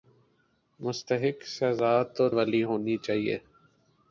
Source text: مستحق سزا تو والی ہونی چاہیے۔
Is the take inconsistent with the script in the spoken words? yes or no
no